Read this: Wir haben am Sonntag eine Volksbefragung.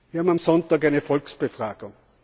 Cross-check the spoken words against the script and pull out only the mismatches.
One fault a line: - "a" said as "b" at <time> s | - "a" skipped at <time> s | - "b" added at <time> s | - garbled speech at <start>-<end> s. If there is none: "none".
none